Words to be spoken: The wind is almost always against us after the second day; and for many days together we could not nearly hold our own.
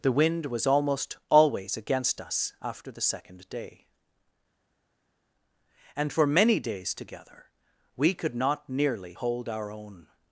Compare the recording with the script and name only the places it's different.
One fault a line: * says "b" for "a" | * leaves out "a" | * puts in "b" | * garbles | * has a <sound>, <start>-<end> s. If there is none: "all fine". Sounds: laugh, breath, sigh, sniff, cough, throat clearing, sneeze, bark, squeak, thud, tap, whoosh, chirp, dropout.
* says "was" for "is"